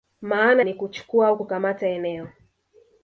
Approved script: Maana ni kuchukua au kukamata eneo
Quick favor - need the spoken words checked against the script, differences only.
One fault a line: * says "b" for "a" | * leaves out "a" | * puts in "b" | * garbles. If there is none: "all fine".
all fine